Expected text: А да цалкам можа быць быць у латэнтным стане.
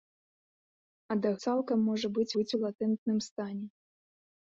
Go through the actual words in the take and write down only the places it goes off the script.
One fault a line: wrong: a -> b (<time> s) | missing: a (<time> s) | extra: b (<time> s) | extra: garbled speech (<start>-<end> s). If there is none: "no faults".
no faults